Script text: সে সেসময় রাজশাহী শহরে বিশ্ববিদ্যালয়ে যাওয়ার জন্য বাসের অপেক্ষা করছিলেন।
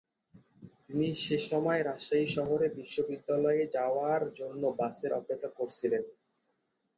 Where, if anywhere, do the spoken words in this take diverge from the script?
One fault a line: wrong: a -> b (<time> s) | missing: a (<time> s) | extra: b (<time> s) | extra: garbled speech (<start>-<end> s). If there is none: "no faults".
wrong: সে -> তিনি (0.8 s)